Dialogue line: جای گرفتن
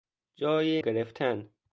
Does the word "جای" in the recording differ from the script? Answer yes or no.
no